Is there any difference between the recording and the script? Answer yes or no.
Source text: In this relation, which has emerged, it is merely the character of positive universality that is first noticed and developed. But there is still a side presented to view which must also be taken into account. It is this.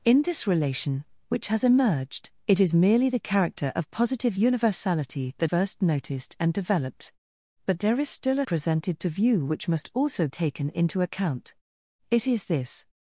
yes